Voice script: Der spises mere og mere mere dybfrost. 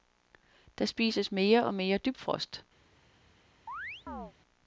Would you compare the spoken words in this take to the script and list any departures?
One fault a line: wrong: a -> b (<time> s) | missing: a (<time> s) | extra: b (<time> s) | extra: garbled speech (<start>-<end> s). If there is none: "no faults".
missing: mere (2.0 s)